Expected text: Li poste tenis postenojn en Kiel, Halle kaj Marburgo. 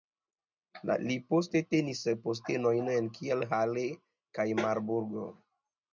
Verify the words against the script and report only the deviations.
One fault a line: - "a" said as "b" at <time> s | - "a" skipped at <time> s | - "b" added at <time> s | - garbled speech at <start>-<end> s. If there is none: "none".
none